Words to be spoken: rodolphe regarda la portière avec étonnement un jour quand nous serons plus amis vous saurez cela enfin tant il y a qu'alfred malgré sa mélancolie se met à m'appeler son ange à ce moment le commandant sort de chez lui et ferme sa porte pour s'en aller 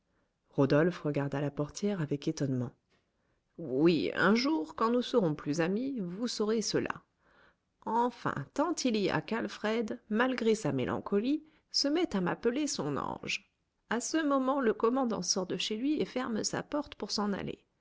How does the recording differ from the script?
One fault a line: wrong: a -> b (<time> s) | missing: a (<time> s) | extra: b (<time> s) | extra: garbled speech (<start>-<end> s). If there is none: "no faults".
extra: oui (3.6 s)